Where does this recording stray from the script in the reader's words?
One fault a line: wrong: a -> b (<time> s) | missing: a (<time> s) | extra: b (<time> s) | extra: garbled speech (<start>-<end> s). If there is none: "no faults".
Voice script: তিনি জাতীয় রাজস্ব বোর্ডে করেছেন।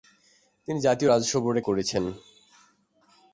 no faults